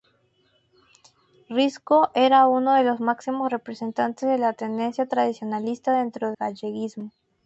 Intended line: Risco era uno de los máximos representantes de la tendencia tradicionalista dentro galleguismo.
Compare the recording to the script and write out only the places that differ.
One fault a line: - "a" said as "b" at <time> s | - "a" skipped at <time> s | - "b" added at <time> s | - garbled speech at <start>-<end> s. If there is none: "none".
none